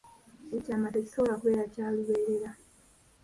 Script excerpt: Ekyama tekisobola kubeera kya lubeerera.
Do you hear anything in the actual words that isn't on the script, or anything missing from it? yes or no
no